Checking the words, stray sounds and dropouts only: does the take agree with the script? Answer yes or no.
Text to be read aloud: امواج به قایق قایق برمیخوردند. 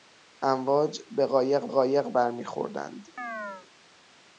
no